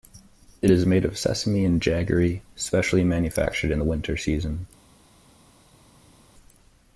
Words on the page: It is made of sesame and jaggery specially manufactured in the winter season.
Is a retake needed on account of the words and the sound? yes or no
no